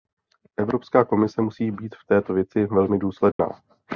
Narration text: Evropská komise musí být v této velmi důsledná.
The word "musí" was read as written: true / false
true